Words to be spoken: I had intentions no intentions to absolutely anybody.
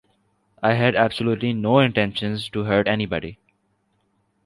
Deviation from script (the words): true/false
true